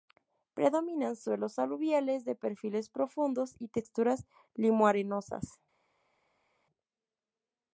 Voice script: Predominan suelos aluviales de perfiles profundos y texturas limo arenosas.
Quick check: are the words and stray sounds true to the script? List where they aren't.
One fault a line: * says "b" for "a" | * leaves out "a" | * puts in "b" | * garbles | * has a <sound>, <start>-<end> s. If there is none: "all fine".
all fine